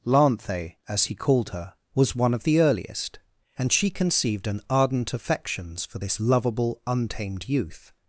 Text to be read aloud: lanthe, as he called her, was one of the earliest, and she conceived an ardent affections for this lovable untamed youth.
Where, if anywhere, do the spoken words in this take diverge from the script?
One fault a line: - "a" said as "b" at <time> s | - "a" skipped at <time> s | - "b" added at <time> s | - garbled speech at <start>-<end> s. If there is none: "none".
none